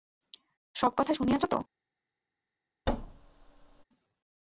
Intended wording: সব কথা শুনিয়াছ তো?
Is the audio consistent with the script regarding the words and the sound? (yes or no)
no